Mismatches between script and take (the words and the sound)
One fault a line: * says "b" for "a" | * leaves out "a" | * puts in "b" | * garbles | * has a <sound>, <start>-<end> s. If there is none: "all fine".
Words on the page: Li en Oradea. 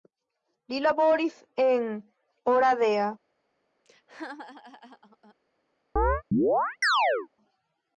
* puts in "laboris"
* has a laugh, 3.8-5.3 s
* has a chirp, 6.0-7.3 s